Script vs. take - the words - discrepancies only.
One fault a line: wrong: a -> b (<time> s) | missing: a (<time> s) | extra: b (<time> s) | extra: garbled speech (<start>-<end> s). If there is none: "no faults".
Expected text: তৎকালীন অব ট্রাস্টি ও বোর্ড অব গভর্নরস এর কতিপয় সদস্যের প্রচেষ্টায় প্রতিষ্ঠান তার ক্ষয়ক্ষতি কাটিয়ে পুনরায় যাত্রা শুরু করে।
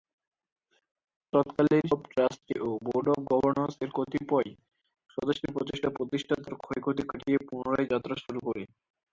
no faults